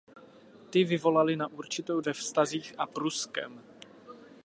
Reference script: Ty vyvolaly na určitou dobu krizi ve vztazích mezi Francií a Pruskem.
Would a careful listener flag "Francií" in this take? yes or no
yes